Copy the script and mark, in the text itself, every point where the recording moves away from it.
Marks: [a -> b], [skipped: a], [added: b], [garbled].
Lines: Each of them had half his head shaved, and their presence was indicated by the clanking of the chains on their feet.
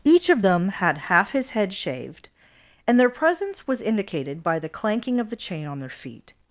Each of them had half his head shaved, and their presence was indicated by the clanking of the [chains -> chain] on their feet.